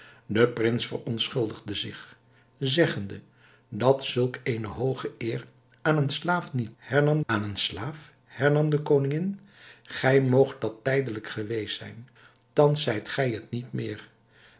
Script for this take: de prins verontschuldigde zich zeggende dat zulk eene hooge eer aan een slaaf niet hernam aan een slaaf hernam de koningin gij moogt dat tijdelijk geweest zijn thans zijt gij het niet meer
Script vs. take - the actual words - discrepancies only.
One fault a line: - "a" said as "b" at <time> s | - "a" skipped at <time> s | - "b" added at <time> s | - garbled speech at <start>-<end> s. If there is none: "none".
none